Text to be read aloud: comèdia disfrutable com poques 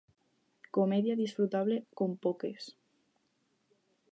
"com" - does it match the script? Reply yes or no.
yes